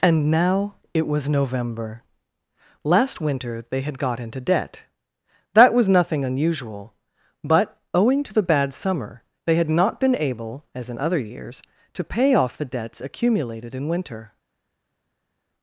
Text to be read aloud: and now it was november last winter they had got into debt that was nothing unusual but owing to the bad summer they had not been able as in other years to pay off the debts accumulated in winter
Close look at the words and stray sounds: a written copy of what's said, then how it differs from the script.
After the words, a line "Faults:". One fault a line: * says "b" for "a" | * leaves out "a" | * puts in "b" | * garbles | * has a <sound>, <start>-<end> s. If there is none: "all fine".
and now it was november last winter they had got into debt that was nothing unusual but owing to the bad summer they had not been able as in other years to pay off the debts accumulated in winter
Faults:
all fine